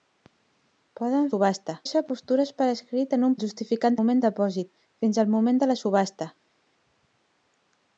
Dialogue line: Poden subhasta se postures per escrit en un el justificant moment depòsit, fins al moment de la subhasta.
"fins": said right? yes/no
yes